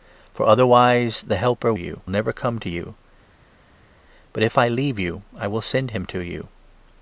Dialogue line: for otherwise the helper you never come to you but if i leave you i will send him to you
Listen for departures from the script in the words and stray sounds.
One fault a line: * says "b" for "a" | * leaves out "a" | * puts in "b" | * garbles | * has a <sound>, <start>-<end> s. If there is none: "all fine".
all fine